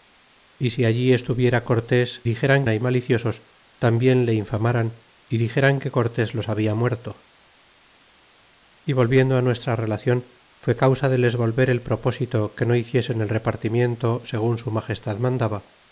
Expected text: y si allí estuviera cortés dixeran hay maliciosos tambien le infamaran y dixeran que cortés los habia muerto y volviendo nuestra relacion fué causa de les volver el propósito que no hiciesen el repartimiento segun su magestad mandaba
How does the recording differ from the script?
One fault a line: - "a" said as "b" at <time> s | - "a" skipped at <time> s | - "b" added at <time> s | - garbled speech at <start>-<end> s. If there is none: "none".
none